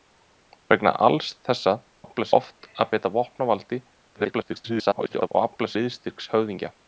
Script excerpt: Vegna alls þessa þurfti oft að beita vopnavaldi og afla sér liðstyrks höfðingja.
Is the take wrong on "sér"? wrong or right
wrong